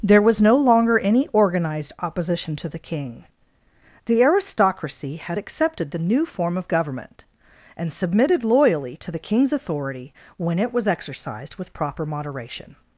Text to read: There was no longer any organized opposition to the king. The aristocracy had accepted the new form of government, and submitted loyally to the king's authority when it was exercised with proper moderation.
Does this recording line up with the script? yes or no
yes